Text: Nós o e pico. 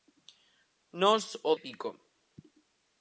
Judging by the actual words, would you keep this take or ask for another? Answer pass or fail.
pass